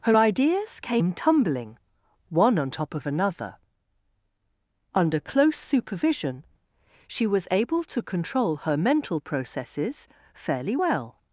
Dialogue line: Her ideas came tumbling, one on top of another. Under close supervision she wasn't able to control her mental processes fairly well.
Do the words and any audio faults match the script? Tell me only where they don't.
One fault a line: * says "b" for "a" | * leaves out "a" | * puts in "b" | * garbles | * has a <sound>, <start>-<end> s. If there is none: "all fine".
* says "was" for "wasn't"